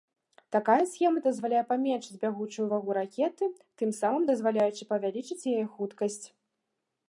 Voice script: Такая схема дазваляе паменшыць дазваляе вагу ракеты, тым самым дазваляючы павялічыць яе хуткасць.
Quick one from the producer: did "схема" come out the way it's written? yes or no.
yes